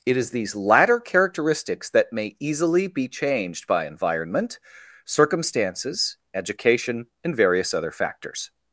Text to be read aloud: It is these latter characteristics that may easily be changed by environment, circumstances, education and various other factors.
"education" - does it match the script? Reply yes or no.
yes